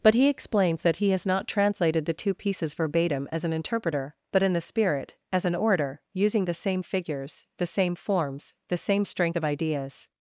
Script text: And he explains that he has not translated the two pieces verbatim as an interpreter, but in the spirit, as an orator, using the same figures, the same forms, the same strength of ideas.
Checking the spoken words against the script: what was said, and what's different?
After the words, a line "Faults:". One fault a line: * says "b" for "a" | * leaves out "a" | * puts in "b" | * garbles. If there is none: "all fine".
But he explains that he has not translated the two pieces verbatim as an interpreter, but in the spirit, as an orator, using the same figures, the same forms, the same strength of ideas.
Faults:
* says "But" for "And"